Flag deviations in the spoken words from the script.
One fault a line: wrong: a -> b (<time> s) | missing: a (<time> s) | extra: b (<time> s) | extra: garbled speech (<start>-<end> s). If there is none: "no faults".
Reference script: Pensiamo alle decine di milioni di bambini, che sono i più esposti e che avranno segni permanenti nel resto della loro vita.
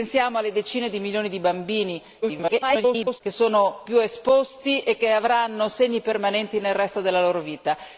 extra: garbled speech (2.2-3.2 s)
missing: i (3.8 s)